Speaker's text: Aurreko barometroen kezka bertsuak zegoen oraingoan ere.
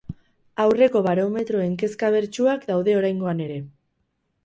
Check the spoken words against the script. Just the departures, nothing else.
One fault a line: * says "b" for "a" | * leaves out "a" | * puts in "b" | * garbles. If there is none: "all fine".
* says "daude" for "zegoen"